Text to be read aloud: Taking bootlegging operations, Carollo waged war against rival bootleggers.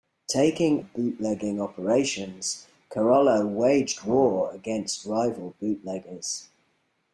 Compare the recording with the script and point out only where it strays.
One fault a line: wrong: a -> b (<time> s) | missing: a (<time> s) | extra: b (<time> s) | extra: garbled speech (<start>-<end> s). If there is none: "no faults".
no faults